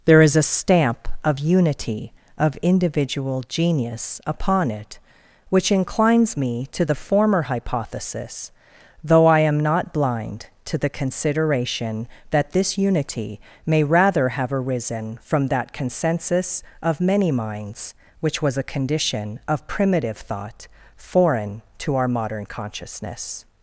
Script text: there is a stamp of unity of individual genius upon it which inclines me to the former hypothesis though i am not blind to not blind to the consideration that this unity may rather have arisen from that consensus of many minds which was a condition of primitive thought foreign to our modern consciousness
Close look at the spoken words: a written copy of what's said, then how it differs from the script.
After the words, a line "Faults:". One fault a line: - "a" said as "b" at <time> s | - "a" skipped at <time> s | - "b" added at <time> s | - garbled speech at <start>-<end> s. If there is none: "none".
there is a stamp of unity of individual genius upon it which inclines me to the former hypothesis though i am not blind to the consideration that this unity may rather have arisen from that consensus of many minds which was a condition of primitive thought foreign to our modern consciousness
Faults:
- "not blind to" skipped at 10.8 s